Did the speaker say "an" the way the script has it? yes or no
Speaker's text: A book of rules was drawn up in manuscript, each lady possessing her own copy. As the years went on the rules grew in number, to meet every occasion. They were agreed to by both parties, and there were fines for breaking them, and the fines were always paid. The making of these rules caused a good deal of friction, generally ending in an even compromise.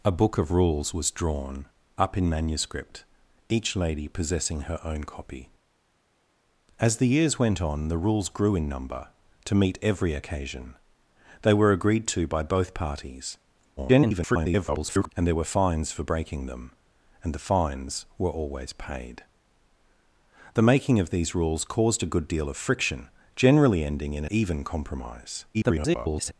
no